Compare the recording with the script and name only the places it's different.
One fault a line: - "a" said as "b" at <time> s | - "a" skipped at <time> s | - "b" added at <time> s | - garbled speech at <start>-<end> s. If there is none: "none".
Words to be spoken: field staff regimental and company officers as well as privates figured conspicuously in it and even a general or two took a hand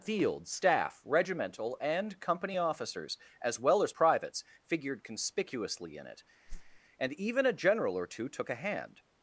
none